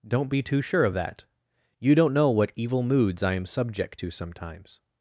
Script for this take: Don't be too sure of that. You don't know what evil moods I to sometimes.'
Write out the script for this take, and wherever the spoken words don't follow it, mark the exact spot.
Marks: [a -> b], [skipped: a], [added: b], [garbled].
Don't be too sure of that. You don't know what evil moods I [added: am subject] to sometimes.'